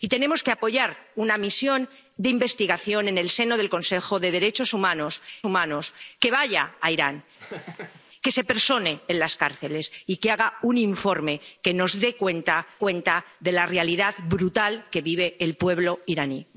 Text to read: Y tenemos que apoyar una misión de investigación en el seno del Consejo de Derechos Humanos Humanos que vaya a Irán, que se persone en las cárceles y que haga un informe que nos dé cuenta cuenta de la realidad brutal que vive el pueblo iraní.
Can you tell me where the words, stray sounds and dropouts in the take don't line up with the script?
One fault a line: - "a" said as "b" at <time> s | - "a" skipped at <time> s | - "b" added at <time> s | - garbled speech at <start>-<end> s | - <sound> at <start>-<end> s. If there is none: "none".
- laugh at 7.4-8.0 s